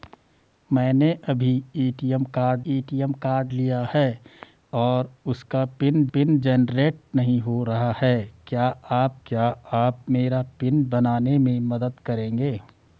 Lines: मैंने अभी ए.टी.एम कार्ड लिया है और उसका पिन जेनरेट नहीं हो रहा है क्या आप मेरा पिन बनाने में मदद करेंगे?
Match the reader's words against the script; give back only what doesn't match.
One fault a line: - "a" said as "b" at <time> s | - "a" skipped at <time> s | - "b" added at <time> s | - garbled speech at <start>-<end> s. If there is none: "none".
- "ए.टी.एम कार्ड" added at 2.7 s
- "पिन" added at 6.1 s
- "क्या आप" added at 9.3 s